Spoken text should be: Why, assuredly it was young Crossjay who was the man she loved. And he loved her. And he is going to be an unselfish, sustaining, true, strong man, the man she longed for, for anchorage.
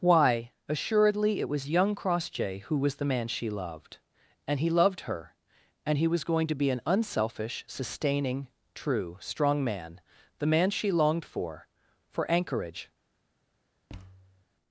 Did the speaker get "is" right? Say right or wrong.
wrong